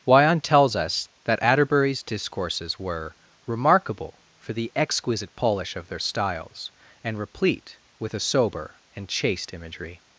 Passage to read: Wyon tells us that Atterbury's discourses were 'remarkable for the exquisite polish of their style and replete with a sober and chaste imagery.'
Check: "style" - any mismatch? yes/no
yes